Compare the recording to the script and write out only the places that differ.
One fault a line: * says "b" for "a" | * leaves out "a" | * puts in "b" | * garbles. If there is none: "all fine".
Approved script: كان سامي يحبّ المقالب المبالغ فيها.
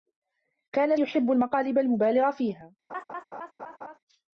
* leaves out "سامي"